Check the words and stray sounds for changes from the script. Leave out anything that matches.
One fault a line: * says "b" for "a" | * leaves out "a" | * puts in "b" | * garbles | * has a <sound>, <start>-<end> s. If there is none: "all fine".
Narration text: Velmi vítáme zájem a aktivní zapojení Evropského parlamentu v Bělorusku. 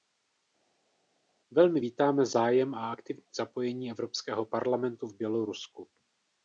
all fine